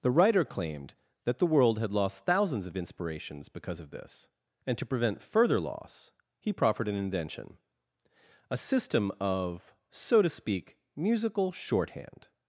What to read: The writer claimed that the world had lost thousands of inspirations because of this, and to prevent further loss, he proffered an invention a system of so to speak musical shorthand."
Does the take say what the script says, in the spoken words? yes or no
yes